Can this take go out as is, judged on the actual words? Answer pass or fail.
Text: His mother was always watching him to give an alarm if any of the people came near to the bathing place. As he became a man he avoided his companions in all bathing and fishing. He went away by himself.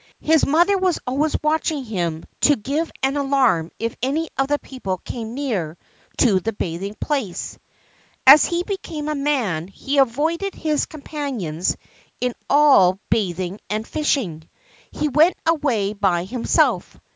pass